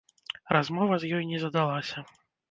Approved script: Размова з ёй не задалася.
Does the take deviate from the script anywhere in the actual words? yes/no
no